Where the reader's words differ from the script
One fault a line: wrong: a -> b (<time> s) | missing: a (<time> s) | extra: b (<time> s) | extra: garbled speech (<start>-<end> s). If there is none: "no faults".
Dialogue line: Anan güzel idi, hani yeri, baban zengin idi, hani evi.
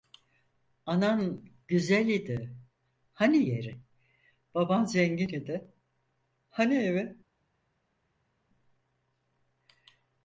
no faults